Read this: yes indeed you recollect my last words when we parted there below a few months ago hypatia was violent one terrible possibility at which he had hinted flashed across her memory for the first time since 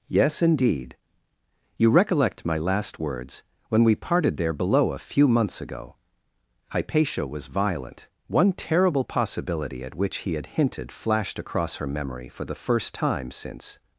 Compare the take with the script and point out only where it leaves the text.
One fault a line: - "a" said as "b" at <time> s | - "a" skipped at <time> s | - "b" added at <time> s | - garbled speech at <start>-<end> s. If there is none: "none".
none